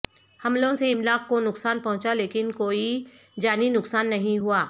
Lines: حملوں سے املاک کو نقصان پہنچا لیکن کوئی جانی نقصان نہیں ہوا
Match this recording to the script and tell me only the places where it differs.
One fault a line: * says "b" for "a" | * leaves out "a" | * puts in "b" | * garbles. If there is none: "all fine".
all fine